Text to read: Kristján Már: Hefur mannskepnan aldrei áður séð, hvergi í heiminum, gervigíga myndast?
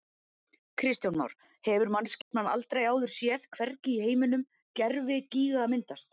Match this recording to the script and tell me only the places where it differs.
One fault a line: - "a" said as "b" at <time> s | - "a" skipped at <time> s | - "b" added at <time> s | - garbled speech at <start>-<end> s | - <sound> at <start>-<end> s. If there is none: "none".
- dropout at 2.2-2.3 s